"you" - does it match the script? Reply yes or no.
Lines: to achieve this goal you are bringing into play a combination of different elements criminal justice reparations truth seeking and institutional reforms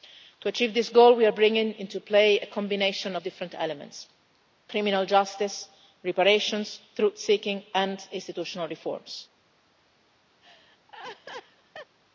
no